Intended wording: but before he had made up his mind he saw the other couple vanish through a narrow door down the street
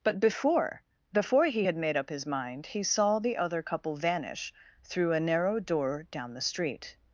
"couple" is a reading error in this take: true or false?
false